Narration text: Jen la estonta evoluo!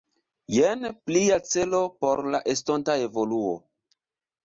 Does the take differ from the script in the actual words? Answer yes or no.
yes